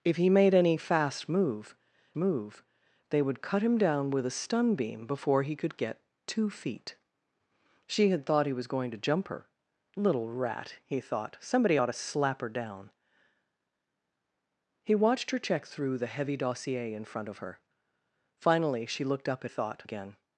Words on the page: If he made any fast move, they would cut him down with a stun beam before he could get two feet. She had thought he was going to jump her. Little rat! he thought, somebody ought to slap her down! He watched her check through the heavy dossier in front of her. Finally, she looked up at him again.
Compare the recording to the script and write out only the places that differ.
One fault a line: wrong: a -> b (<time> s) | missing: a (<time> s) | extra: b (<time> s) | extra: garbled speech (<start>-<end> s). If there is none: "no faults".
extra: move (2.2 s)
wrong: him -> thought (19.5 s)